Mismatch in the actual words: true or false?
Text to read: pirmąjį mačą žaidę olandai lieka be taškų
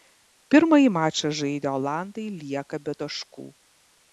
false